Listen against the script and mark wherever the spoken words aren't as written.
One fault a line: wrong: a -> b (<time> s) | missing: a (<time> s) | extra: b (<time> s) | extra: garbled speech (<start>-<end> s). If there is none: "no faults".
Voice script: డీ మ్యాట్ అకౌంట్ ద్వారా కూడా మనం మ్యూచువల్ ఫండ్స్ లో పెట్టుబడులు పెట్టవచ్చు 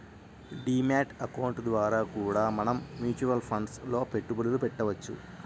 no faults